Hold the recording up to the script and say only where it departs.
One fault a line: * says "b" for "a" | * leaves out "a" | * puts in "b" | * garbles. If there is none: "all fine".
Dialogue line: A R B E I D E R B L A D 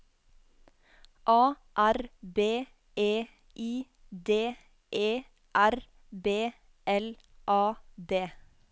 all fine